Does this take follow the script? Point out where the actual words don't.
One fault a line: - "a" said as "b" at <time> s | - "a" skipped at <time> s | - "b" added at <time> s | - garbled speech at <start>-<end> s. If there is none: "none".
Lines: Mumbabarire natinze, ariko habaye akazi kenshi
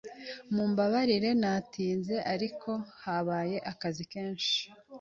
none